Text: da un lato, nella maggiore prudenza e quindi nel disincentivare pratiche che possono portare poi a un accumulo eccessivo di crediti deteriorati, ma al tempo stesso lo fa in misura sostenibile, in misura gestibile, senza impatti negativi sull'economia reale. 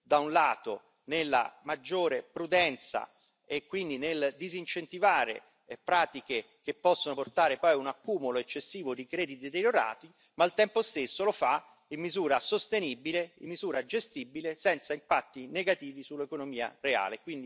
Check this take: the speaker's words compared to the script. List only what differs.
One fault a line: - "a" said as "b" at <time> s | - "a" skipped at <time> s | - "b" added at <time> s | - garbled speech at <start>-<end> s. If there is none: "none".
none